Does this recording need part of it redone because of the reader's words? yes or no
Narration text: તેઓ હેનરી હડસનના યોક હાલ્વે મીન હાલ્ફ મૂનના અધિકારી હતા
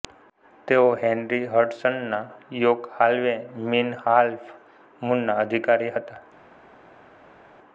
no